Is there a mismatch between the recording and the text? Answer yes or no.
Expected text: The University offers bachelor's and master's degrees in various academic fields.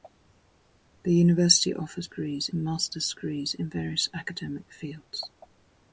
yes